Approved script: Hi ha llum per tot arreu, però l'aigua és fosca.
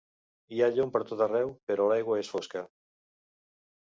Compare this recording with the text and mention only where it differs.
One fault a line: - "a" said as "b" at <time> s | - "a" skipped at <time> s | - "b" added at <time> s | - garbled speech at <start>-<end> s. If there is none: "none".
none